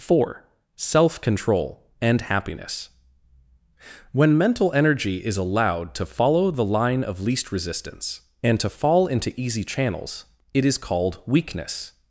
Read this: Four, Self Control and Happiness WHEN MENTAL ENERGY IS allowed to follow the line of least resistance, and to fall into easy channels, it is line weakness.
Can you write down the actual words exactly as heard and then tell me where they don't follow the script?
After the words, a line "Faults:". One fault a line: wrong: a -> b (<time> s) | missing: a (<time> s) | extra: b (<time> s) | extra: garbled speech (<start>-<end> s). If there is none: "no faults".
Four, Self Control and Happiness WHEN MENTAL ENERGY IS allowed to follow the line of least resistance, and to fall into easy channels, it is called weakness.
Faults:
wrong: line -> called (10.8 s)